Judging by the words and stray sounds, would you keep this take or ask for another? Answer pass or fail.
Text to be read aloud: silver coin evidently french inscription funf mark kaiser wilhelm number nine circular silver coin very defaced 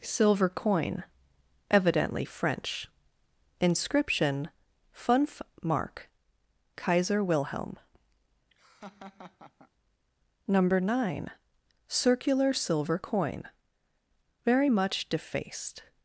fail